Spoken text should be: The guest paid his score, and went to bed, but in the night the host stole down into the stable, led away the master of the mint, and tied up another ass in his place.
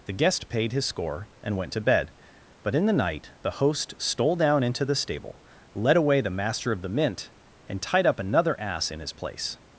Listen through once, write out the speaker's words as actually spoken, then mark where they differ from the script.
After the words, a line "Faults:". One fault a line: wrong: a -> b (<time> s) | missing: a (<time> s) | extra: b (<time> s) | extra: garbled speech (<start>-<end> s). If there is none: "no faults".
The guest paid his score, and went to bed, but in the night the host stole down into the stable, led away the master of the mint, and tied up another ass in his place.
Faults:
no faults